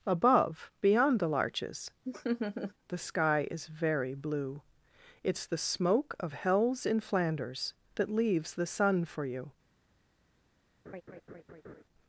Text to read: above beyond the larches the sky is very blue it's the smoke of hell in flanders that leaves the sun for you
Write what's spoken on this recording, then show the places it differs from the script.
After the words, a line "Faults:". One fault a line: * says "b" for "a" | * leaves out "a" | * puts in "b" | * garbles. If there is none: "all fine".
above beyond the larches the sky is very blue it's the smoke of hells in flanders that leaves the sun for you
Faults:
* says "hells" for "hell"